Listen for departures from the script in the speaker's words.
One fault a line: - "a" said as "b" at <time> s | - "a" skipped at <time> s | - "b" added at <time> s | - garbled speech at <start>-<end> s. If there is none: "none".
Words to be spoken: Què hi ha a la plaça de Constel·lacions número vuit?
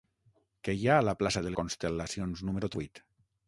none